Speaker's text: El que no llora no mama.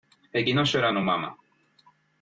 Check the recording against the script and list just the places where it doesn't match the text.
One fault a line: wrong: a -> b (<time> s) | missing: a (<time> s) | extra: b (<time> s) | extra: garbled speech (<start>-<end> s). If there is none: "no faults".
no faults